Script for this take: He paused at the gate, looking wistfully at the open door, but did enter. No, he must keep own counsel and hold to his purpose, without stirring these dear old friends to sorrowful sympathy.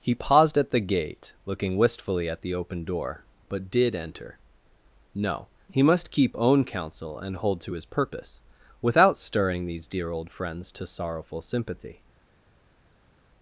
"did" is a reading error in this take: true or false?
false